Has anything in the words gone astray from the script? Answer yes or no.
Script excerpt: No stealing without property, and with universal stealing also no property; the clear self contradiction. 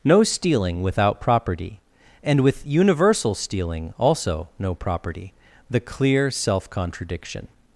no